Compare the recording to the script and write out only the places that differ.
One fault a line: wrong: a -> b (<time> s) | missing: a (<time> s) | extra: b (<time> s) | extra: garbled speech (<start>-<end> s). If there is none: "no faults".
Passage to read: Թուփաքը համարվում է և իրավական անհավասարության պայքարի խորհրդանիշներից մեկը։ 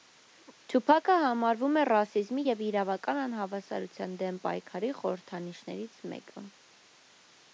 extra: ռասիզմի (1.9 s)
extra: դեմ (4.2 s)